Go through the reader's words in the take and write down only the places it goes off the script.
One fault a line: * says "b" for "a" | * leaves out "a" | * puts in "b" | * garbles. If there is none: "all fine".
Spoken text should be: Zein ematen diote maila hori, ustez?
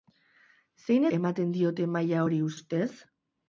all fine